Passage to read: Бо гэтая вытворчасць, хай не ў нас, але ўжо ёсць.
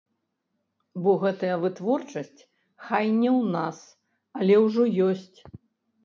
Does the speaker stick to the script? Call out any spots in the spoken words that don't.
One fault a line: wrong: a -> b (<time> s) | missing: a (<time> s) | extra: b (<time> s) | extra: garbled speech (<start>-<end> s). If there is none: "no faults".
no faults